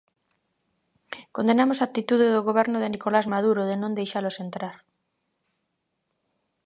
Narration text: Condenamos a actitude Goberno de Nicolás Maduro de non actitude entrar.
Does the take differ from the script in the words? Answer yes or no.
yes